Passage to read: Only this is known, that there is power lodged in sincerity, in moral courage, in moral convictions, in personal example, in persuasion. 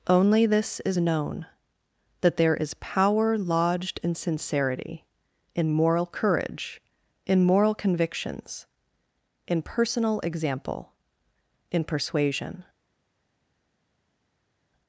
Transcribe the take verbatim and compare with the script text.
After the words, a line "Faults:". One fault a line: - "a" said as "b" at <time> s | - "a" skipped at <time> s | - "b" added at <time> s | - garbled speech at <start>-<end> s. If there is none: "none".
Only this is known, that there is power lodged in sincerity, in moral courage, in moral convictions, in personal example, in persuasion.
Faults:
none